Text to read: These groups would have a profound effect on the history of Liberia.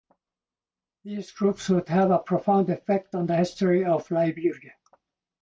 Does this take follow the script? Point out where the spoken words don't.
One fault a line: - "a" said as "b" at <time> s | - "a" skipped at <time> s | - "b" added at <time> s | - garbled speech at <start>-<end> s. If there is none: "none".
none